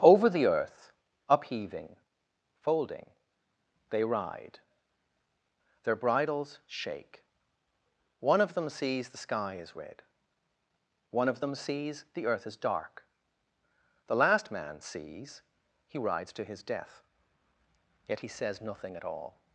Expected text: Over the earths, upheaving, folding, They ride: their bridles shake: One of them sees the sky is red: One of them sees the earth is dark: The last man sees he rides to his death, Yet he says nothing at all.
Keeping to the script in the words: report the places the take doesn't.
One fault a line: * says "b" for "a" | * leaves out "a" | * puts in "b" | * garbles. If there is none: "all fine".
* says "earth" for "earths"